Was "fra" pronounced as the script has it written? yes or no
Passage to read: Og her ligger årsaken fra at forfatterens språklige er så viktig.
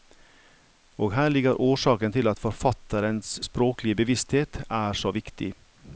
no